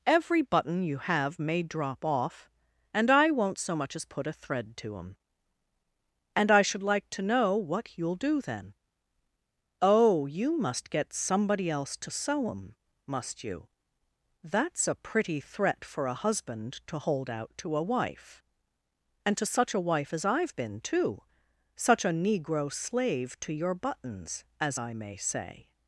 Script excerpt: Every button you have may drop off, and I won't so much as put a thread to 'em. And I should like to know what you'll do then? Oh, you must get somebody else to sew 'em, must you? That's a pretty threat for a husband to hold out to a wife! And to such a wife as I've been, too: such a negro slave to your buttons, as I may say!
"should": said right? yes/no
yes